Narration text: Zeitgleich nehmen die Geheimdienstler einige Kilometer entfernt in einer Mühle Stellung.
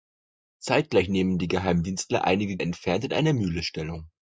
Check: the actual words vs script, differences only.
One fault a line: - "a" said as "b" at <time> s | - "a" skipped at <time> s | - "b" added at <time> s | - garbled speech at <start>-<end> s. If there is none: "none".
- "Kilometer" skipped at 2.6 s